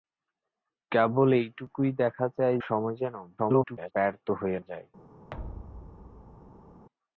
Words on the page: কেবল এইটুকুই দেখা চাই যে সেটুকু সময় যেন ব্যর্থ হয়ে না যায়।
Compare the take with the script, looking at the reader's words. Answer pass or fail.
fail